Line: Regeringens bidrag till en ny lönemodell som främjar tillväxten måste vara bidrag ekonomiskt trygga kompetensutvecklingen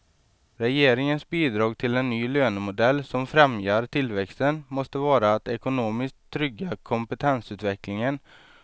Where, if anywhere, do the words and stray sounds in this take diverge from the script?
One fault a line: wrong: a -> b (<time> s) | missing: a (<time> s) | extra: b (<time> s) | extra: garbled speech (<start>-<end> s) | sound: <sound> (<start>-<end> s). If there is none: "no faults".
wrong: bidrag -> att (5.3 s)